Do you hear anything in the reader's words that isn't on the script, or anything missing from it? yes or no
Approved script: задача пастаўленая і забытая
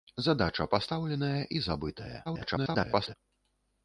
yes